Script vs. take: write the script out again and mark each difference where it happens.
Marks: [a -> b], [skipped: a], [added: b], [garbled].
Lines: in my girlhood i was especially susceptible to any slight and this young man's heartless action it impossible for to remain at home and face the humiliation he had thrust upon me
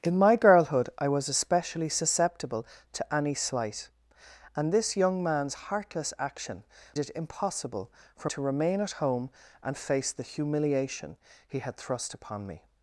in my girlhood i was especially susceptible to any slight and this young man's heartless action it impossible for to remain at home and face the humiliation he had thrust upon me